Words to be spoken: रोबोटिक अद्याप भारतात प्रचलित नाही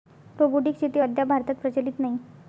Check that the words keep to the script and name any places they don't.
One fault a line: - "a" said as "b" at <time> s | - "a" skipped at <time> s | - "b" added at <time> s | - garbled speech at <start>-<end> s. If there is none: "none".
- "शेती" added at 0.8 s